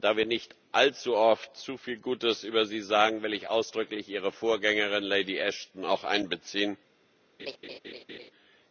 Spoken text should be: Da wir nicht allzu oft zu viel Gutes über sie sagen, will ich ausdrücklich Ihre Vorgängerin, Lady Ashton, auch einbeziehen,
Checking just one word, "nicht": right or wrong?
right